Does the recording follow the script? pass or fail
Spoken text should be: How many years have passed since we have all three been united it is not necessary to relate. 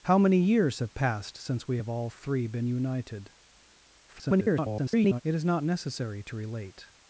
fail